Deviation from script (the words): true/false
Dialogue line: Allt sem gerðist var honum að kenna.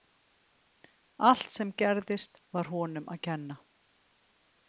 false